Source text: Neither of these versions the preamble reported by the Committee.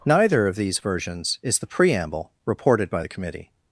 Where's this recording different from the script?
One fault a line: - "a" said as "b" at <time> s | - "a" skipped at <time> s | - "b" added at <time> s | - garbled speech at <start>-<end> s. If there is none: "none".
- "is" added at 1.4 s